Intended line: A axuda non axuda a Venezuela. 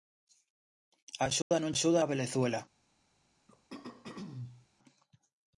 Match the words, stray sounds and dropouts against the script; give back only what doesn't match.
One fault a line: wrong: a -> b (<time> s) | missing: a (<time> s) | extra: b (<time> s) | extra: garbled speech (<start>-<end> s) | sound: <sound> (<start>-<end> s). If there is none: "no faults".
sound: dropout (1.4-1.5 s)
sound: throat clearing (3.5-4.7 s)